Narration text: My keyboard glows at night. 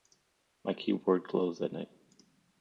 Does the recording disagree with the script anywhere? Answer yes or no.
no